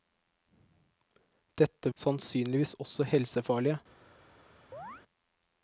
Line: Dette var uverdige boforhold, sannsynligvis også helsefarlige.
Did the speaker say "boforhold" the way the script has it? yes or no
no